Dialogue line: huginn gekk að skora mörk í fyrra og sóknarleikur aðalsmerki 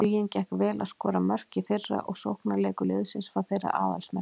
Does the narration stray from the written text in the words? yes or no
yes